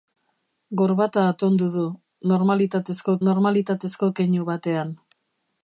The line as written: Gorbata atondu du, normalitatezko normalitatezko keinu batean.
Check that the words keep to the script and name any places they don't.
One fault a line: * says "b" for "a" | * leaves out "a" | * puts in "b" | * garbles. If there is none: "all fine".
all fine